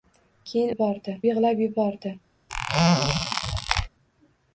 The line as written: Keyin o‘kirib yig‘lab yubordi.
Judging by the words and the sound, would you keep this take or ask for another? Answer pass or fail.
fail